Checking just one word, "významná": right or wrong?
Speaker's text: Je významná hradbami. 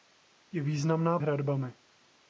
right